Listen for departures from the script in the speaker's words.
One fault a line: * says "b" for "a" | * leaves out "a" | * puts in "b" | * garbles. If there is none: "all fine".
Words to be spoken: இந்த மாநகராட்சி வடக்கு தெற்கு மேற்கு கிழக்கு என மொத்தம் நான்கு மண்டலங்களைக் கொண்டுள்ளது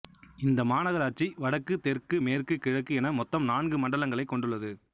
all fine